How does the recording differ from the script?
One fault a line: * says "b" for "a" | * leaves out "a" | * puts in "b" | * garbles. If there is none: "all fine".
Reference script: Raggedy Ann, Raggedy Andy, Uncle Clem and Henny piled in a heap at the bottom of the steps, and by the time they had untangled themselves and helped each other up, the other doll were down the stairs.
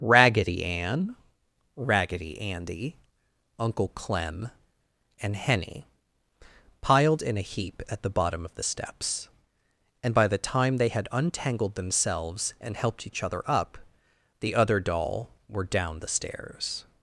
all fine